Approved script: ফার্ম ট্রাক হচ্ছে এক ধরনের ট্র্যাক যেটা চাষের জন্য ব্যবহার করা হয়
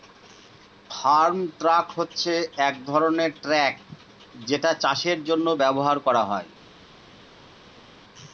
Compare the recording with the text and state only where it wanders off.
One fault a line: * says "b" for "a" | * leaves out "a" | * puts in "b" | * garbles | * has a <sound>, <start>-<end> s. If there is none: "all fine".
all fine